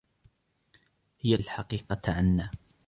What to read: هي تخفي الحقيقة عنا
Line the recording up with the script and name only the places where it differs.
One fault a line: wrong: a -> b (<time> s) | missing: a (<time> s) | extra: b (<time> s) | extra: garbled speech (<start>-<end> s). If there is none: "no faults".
missing: تخفي (1.4 s)